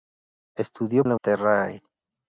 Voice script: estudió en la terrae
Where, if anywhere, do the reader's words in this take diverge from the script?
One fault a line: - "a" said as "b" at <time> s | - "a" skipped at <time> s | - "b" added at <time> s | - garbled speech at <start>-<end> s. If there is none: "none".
none